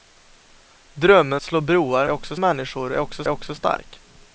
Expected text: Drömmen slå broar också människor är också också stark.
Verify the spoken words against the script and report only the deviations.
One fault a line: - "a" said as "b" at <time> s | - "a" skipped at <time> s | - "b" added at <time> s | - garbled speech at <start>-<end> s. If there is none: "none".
none